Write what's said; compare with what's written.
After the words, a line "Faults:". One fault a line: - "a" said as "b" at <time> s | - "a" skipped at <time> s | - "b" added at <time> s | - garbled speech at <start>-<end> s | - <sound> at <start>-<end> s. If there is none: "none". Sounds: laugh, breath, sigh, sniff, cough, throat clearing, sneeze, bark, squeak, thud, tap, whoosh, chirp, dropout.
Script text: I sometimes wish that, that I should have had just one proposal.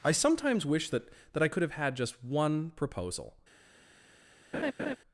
I sometimes wish that, that I could have had just one proposal.
Faults:
- "should" said as "could" at 1.5 s
- laugh at 4.5-5.0 s